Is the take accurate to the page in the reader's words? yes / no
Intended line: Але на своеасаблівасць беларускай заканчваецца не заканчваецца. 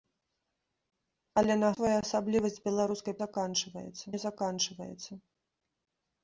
yes